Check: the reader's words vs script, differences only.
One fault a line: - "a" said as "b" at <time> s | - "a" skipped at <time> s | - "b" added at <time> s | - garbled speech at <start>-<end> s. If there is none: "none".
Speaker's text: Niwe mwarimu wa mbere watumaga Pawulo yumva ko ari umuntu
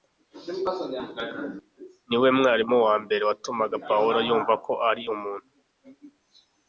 none